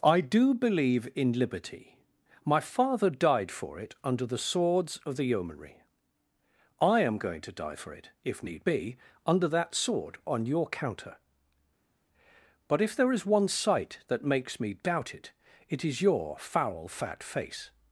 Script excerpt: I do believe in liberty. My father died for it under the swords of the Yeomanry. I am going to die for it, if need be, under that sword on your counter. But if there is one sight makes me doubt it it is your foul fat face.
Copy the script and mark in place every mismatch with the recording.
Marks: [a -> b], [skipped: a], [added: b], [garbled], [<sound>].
I do believe in liberty. My father died for it under the swords of the Yeomanry. I am going to die for it, if need be, under that sword on your counter. But if there is one sight [added: that] makes me doubt it it is your foul fat face.